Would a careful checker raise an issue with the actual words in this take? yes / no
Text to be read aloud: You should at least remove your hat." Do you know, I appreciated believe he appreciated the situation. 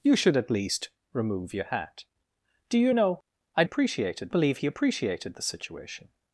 no